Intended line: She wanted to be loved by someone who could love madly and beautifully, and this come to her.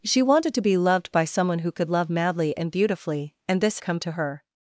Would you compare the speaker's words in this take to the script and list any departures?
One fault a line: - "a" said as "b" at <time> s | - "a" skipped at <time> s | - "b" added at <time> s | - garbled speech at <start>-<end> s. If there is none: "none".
none